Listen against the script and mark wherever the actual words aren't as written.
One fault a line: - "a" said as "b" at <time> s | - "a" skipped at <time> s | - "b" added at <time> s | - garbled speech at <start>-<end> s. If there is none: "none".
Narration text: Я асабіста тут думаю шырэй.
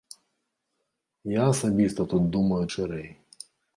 none